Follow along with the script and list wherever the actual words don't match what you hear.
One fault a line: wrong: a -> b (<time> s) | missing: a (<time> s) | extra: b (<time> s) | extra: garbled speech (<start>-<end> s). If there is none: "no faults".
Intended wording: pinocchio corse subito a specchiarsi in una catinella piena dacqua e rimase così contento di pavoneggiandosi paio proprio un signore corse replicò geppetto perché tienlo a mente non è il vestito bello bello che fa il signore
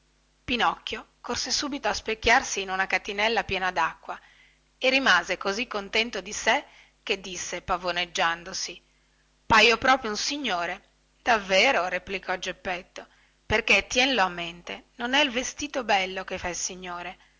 extra: sé che disse (6.3 s)
wrong: corse -> davvero (11.2 s)
missing: bello (16.2 s)